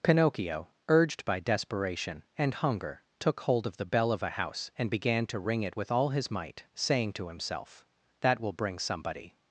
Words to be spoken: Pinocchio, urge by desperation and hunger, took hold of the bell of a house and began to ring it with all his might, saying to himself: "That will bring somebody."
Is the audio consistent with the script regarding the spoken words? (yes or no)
no